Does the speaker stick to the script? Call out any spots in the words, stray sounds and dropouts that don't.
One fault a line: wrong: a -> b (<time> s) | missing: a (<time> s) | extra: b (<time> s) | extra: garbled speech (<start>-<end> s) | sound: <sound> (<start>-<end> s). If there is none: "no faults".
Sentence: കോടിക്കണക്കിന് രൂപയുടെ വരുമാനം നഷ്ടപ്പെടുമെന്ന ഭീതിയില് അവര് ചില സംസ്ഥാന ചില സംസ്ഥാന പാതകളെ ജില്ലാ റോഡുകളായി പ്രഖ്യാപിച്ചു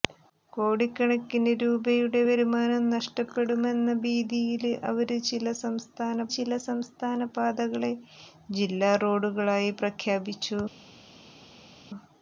no faults